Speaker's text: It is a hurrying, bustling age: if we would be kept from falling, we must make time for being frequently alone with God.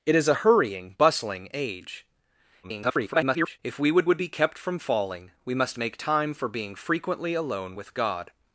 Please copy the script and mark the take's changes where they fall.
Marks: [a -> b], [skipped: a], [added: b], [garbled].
It is a hurrying, bustling age: [garbled] if we would [added: would] be kept from falling, we must make time for being frequently alone with God.